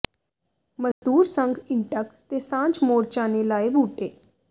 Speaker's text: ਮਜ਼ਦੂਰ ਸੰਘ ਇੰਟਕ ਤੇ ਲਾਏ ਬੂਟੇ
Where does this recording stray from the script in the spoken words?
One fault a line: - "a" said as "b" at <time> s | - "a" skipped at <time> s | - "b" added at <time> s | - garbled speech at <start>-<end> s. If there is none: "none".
- "ਸਾਂਝ ਮੋਰਚਾ ਨੇ" added at 2.4 s